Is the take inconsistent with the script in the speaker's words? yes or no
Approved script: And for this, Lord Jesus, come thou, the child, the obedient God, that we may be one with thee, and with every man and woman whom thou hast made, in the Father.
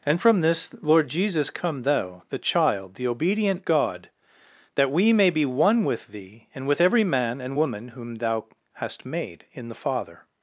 yes